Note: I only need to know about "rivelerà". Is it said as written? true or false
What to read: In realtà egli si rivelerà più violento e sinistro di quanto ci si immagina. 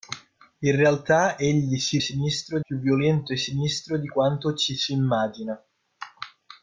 false